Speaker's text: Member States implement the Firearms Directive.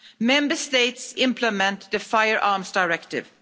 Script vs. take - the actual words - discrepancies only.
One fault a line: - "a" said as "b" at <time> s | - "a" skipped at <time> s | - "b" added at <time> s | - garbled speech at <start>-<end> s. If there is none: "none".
none